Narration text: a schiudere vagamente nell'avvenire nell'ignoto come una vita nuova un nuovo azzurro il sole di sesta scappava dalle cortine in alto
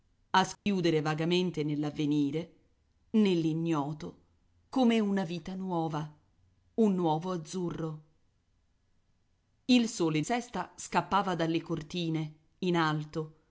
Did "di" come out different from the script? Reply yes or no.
yes